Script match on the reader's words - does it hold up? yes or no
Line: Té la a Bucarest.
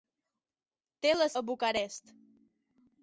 yes